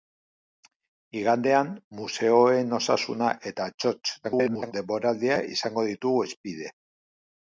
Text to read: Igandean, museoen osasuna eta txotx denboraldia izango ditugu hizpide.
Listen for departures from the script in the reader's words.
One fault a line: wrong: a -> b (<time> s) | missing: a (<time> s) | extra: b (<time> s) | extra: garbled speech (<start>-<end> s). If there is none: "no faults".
extra: garbled speech (4.2-4.7 s)